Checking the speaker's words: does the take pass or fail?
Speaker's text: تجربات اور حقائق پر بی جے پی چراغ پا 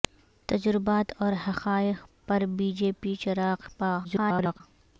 fail